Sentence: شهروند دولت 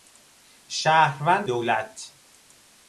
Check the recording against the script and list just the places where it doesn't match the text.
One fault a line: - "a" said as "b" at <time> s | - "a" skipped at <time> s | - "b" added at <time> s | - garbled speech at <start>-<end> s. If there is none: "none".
none